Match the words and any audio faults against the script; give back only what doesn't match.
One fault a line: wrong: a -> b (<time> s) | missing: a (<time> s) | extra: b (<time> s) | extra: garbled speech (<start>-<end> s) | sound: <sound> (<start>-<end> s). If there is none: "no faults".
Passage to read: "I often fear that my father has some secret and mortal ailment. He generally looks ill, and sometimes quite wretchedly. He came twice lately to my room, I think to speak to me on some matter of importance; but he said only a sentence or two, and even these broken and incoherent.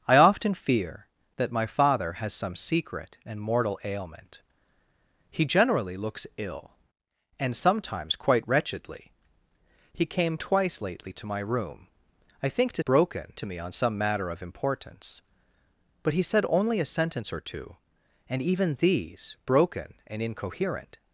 wrong: speak -> broken (12.8 s)